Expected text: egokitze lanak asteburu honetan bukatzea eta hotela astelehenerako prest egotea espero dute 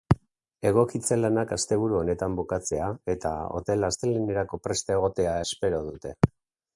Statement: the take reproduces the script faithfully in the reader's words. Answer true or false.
true